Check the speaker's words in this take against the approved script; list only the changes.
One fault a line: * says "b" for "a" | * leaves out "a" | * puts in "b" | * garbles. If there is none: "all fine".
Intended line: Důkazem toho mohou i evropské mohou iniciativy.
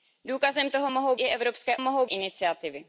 all fine